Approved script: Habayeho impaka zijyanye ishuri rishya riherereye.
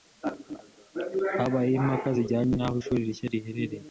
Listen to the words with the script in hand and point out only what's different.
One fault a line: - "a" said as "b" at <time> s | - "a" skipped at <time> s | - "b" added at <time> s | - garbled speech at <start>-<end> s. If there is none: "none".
- "n'aho" added at 2.5 s